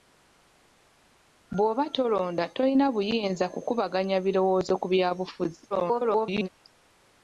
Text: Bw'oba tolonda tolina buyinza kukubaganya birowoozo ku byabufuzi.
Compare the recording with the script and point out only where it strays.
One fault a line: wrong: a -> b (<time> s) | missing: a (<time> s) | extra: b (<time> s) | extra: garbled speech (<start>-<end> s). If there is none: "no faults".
extra: garbled speech (5.7-6.5 s)